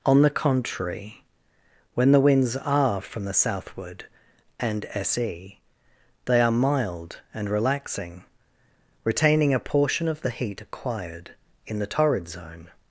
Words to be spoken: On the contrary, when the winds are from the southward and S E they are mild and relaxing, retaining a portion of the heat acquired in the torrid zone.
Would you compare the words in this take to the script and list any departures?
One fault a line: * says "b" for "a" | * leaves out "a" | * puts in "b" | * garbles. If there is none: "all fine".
all fine